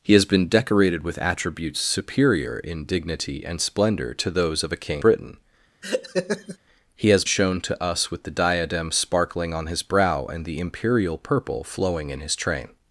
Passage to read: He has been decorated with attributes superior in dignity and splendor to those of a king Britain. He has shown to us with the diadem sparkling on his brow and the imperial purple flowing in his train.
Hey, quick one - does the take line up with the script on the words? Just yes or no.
yes